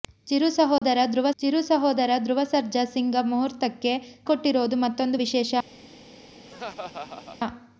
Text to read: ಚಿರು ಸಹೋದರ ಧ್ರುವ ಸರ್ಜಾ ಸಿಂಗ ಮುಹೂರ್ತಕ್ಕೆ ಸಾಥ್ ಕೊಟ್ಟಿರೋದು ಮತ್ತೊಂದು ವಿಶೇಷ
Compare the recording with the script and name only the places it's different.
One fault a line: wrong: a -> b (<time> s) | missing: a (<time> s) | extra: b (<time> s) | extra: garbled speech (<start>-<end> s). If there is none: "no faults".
extra: ಚಿರು ಸಹೋದರ ಧ್ರುವ (1.4 s)
missing: ಸಾಥ್ (3.9 s)